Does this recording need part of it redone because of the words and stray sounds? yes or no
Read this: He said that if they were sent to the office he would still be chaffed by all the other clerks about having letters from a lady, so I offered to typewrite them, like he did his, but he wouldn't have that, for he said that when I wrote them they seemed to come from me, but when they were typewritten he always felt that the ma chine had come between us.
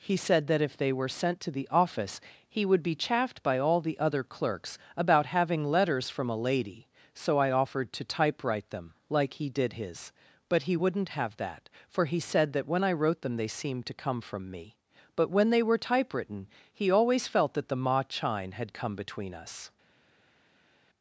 yes